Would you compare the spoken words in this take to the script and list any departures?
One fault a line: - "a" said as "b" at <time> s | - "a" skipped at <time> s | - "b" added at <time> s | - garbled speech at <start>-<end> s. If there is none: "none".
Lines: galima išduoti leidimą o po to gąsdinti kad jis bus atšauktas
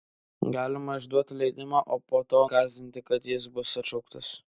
none